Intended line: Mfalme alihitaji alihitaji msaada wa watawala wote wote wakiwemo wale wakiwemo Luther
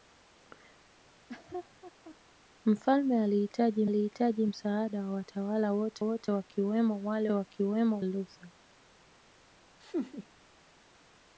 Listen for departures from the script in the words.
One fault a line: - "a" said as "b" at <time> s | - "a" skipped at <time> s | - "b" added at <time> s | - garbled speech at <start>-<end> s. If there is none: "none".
none